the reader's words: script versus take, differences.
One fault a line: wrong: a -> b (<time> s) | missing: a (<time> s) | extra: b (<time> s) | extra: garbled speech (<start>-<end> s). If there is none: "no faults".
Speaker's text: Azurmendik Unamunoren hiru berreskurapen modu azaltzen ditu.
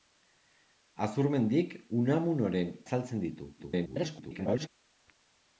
missing: hiru berreskurapen modu (2.7 s)
extra: garbled speech (3.6-4.7 s)